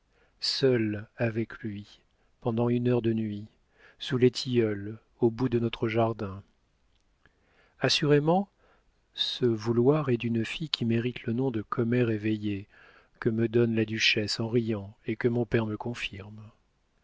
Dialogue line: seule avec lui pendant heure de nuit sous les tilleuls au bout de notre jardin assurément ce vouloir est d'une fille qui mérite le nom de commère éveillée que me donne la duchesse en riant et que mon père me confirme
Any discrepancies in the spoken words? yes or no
yes